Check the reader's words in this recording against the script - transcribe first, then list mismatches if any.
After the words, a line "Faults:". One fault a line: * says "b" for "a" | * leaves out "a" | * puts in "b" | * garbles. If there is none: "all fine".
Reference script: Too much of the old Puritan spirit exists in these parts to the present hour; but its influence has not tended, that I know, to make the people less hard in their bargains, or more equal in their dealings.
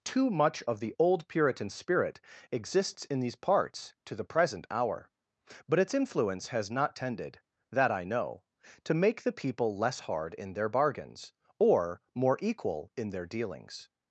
Too much of the old Puritan spirit exists in these parts to the present hour; but its influence has not tended, that I know, to make the people less hard in their bargains, or more equal in their dealings.
Faults:
all fine